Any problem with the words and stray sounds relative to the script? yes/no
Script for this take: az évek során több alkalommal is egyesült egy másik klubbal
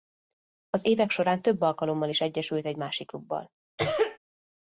yes